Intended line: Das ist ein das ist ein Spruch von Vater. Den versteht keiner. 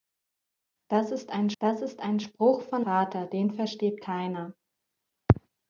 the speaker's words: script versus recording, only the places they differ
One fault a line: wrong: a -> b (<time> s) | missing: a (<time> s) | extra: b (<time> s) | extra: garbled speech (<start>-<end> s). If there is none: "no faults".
no faults